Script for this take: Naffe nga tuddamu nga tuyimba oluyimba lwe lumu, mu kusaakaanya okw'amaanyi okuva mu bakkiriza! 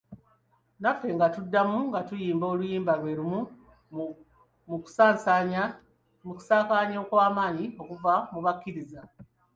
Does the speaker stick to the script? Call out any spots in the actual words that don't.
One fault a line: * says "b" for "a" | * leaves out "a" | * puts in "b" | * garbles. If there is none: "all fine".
all fine